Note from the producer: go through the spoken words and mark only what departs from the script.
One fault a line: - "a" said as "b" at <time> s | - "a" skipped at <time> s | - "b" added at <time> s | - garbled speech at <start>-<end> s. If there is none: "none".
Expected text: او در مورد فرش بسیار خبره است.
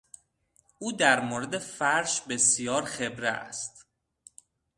none